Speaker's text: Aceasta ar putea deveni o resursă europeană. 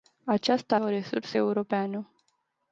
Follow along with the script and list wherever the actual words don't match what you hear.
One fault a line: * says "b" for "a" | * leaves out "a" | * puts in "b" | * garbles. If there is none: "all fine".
* leaves out "ar putea deveni"